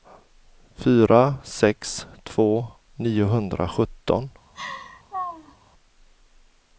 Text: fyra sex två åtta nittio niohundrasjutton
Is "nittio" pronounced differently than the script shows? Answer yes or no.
yes